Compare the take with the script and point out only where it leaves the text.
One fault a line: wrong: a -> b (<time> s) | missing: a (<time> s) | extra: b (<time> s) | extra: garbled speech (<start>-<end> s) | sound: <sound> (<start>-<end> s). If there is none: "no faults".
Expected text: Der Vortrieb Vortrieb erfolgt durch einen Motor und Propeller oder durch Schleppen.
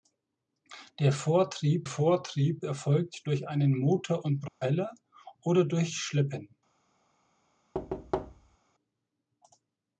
sound: dropout (4.5-4.6 s)
sound: thud (7.7-8.6 s)